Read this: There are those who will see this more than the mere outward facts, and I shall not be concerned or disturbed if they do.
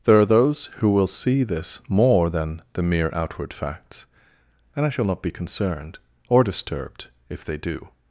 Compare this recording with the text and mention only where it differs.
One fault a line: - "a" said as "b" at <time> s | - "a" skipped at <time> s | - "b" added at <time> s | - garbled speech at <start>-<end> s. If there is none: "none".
none